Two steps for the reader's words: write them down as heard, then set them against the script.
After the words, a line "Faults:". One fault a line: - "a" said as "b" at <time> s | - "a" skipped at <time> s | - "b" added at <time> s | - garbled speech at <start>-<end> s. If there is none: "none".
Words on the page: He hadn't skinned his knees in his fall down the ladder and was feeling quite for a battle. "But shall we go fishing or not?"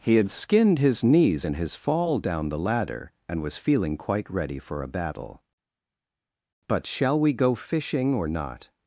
He had skinned his knees in his fall down the ladder and was feeling quite ready for a battle. "But shall we go fishing or not?"
Faults:
- "hadn't" said as "had" at 0.1 s
- "ready" added at 4.3 s